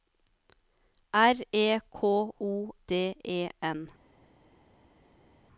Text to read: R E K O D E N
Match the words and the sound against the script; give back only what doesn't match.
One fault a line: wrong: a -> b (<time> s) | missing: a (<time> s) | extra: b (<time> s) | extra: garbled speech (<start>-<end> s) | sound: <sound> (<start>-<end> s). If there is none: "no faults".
no faults